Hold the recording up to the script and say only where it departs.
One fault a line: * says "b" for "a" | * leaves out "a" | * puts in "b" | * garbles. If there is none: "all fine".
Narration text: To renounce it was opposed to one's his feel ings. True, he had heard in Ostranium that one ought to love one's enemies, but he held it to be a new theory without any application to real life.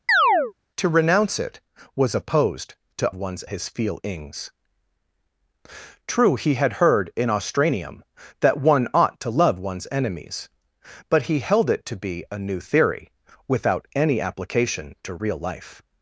all fine